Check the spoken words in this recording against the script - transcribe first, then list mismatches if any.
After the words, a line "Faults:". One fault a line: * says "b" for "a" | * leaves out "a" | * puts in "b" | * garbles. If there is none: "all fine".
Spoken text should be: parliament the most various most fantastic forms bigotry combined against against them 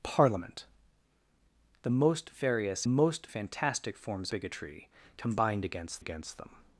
parliament the most various most fantastic forms bigotry combined against against them
Faults:
all fine